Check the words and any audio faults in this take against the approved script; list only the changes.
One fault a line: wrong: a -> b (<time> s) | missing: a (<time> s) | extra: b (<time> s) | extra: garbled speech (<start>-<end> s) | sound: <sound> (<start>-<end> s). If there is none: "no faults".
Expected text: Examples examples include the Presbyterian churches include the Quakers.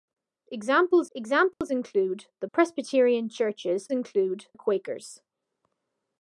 sound: dropout (1.5-1.6 s)